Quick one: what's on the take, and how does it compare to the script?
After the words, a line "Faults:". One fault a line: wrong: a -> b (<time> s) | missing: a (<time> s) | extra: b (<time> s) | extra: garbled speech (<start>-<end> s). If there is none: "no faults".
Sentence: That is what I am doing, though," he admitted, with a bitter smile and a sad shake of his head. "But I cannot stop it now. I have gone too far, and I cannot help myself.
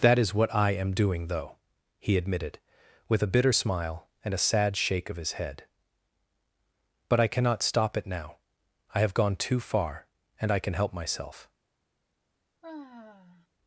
That is what I am doing, though," he admitted, with a bitter smile and a sad shake of his head. "But I cannot stop it now. I have gone too far, and I can help myself.
Faults:
wrong: cannot -> can (10.6 s)